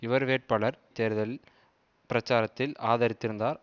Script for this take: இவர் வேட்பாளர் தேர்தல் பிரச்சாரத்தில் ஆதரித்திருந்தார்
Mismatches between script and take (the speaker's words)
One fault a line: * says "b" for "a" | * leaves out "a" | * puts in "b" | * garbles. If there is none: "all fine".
all fine